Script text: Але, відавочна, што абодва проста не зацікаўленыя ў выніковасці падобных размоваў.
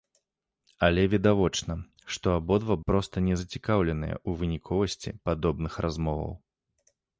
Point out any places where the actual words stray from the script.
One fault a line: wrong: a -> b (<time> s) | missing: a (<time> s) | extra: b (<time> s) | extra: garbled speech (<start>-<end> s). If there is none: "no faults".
no faults